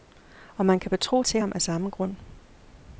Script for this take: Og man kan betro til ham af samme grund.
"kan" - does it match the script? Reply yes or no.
yes